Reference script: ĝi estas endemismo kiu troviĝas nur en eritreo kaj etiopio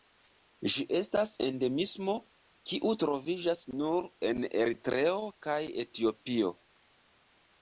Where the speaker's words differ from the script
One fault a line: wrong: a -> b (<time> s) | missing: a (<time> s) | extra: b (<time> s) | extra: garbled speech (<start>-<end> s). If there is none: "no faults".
no faults